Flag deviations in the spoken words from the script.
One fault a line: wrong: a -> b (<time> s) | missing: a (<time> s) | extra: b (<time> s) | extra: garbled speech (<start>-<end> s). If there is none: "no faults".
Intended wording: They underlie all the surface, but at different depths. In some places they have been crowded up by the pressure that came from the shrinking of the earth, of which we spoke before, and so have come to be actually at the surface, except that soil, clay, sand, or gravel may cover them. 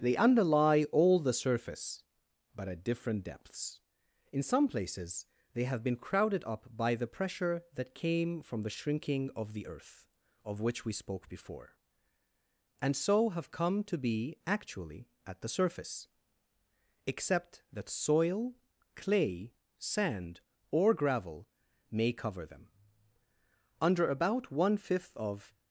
extra: Under about one fifth of (23.8 s)